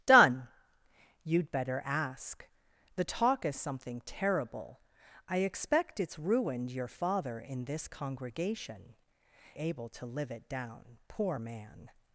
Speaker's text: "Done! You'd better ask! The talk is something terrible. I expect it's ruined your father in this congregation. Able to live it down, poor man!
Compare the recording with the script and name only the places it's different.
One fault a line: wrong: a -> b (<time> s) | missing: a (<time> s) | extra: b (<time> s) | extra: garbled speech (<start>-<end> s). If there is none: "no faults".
no faults